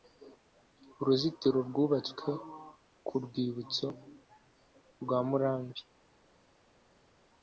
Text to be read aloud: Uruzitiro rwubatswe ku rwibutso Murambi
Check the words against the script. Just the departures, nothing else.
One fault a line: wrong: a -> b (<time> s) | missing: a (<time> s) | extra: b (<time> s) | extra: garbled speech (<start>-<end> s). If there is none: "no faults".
extra: rwa (5.0 s)